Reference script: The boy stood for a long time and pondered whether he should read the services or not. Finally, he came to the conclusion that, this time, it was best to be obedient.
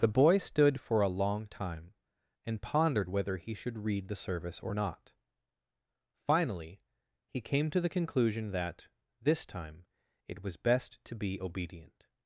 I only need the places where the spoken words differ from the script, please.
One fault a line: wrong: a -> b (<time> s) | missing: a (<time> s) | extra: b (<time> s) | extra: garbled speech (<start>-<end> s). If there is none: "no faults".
wrong: services -> service (4.2 s)